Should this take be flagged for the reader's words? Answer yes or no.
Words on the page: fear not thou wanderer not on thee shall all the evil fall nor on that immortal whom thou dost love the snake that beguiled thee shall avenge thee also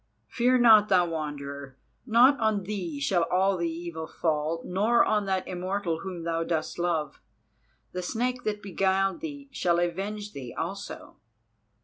no